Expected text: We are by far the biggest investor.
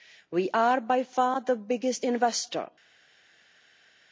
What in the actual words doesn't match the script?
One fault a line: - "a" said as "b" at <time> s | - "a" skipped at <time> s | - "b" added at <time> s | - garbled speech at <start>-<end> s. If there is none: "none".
none